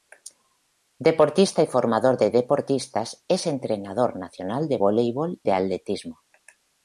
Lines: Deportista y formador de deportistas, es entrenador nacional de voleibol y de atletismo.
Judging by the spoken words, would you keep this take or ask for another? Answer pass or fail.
fail